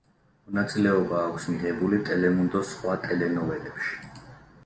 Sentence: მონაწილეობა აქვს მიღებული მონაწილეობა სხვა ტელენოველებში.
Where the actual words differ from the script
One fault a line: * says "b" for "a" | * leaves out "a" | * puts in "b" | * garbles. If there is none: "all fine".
* says "ტელემუნდოს" for "მონაწილეობა"